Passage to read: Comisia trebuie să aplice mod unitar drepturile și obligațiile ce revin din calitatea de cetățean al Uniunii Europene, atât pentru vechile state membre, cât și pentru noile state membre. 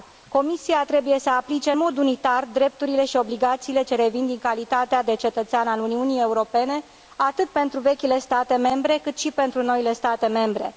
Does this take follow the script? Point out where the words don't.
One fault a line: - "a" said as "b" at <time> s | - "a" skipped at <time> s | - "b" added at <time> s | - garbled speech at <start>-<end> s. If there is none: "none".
none